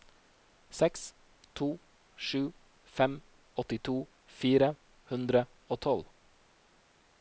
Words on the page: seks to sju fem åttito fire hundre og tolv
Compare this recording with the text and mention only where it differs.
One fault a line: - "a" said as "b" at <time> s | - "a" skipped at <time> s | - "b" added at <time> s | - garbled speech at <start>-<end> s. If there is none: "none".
none